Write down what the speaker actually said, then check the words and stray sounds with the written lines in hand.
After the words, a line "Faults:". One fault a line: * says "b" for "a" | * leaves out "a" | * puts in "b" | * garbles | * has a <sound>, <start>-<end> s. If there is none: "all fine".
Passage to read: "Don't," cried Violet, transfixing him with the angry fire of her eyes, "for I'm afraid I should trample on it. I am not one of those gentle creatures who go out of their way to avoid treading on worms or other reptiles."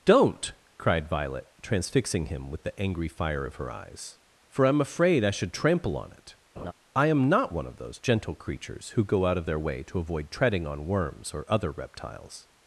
"Don't," cried Violet, transfixing him with the angry fire of her eyes, "for I'm afraid I should trample on it. I am not one of those gentle creatures who go out of their way to avoid treading on worms or other reptiles."
Faults:
* has a laugh, 6.6-6.7 s